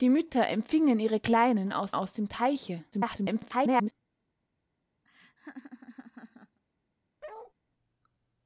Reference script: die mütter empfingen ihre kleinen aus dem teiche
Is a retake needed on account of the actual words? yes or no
yes